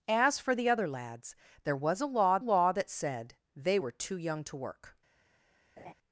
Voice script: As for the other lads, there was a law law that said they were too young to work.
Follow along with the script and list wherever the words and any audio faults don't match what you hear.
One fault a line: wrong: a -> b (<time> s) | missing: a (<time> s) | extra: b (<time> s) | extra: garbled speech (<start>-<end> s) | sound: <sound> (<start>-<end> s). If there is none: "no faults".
sound: laugh (5.8-5.9 s)